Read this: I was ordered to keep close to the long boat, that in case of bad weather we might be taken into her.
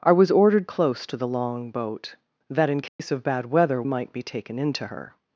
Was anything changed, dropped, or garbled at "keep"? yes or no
yes